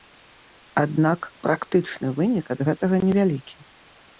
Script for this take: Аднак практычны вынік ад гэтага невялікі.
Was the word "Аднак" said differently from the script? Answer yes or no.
no